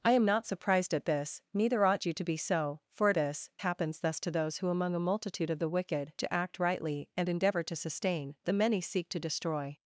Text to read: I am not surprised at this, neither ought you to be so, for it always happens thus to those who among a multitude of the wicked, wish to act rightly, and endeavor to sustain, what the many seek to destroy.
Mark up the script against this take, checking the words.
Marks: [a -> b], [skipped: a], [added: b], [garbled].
I am not surprised at this, neither ought you to be so, for it [always -> this] happens thus to those who among a multitude of the wicked, [skipped: wish] to act rightly, and endeavor to sustain, [skipped: what] the many seek to destroy.